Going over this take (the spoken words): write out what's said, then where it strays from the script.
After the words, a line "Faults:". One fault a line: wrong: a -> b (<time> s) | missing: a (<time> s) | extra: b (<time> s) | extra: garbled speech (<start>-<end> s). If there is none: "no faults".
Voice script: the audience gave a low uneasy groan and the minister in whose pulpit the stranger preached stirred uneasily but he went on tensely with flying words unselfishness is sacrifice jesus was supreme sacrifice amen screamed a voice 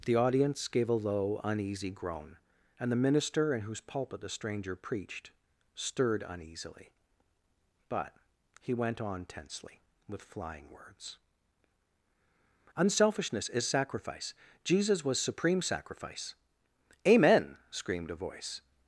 the audience gave a low uneasy groan and the minister in whose pulpit the stranger preached stirred uneasily but he went on tensely with flying words unselfishness is sacrifice jesus was supreme sacrifice amen screamed a voice
Faults:
no faults